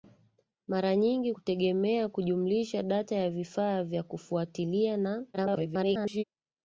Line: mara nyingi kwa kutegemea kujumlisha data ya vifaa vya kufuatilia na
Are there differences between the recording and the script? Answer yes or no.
yes